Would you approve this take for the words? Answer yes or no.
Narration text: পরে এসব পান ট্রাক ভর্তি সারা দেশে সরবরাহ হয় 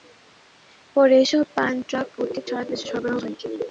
yes